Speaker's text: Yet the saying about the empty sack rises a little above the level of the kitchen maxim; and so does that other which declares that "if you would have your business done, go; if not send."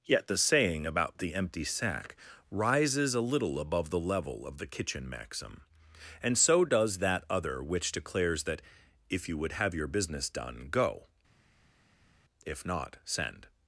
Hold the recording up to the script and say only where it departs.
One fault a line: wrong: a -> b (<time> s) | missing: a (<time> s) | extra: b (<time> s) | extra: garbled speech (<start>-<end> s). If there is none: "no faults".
no faults